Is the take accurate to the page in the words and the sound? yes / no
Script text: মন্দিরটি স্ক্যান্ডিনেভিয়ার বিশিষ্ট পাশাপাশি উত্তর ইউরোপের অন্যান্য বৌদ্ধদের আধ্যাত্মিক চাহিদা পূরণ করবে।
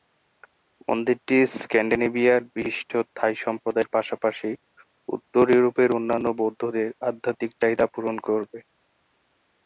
no